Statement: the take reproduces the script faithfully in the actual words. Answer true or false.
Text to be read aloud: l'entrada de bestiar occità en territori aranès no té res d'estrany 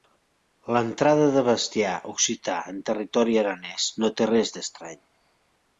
true